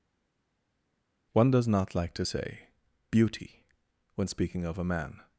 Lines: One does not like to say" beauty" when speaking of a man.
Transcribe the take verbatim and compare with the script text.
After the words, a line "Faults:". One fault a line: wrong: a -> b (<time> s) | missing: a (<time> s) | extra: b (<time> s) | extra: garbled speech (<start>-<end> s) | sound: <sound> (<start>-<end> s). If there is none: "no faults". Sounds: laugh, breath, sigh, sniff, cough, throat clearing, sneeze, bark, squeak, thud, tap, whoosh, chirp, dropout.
One does not like to say" beauty" when speaking of a man.
Faults:
no faults